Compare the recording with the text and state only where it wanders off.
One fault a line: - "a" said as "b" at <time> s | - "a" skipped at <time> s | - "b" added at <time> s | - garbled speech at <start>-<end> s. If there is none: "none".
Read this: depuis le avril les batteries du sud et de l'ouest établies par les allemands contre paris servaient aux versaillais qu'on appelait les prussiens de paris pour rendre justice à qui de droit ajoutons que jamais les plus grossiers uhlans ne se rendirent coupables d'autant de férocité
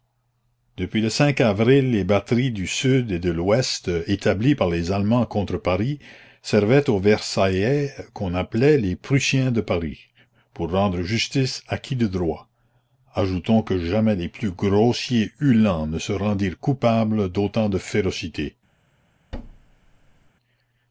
none